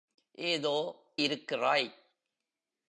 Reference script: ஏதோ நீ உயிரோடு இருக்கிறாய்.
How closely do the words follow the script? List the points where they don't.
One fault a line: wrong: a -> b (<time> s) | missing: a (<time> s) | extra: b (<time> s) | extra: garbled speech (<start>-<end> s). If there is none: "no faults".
missing: நீ உயிரோடு (0.8 s)